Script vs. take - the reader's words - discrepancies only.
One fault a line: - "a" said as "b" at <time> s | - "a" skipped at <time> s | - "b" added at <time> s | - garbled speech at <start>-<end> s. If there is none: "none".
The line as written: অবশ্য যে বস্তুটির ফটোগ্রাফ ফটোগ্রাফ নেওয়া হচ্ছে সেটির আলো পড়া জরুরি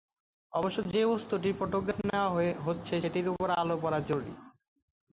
- "ফটোগ্রাফ" skipped at 2.0 s
- "উপর" added at 3.3 s